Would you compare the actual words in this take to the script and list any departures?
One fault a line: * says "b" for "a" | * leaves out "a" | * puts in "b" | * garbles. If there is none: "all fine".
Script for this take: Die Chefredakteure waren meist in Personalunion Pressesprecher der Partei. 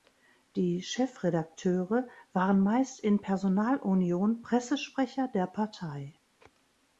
all fine